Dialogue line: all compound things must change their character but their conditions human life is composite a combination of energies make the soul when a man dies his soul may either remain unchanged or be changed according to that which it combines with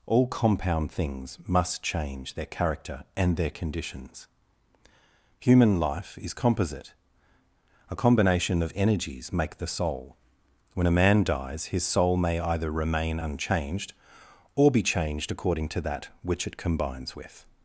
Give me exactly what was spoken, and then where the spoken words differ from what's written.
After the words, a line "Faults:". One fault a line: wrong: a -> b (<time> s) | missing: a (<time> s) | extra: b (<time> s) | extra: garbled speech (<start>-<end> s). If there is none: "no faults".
all compound things must change their character and their conditions human life is composite a combination of energies make the soul when a man dies his soul may either remain unchanged or be changed according to that which it combines with
Faults:
wrong: but -> and (3.1 s)